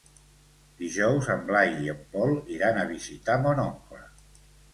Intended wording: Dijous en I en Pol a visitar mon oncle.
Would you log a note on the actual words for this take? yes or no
yes